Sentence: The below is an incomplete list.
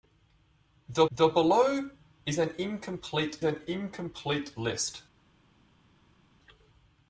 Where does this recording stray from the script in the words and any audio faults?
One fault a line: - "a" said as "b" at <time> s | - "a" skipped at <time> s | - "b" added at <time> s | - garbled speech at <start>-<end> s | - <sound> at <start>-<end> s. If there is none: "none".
- "the" added at 1.1 s
- "an incomplete" added at 3.4 s